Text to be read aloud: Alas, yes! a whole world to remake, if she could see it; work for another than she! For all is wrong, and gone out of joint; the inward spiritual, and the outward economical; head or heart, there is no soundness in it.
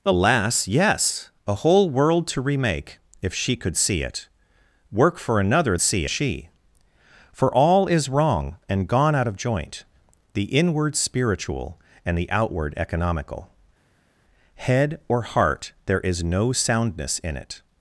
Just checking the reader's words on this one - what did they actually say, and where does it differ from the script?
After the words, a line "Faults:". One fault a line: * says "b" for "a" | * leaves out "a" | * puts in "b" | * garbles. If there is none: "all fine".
Alas, yes! a whole world to remake, if she could see it; work for another see she! For all is wrong, and gone out of joint; the inward spiritual, and the outward economical; head or heart, there is no soundness in it.
Faults:
* says "see" for "than"